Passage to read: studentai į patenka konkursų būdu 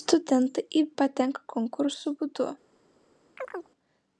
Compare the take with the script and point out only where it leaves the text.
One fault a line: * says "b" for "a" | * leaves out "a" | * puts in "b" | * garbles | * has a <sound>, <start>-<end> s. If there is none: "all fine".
* has a chirp, 3.4-3.7 s